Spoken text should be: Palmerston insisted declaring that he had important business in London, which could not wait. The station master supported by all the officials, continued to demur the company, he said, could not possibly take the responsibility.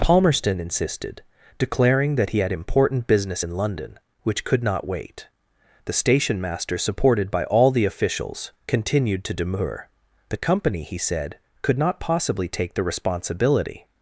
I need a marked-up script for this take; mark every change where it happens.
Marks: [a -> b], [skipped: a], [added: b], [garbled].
Palmerston insisted declaring that he had important business in London, which could not wait. The station master supported by all the officials, continued to demur the company, he said, could not possibly take the responsibility.